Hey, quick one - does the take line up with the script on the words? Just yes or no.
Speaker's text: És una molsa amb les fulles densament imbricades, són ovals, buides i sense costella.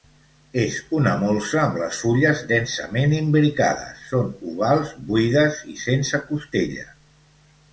yes